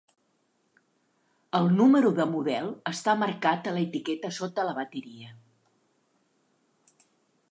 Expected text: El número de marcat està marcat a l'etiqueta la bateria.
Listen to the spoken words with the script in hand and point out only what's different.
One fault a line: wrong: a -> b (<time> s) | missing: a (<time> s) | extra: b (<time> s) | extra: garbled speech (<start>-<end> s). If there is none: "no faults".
wrong: marcat -> model (2.3 s)
extra: sota (4.4 s)